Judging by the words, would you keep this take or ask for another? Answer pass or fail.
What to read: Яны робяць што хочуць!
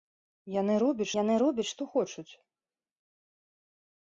fail